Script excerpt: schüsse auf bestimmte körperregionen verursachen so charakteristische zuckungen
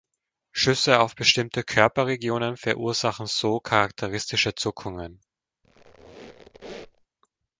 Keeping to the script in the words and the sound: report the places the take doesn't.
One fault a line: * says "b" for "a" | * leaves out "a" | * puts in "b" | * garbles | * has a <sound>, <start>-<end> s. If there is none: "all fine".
* has a squeak, 5.6-7.1 s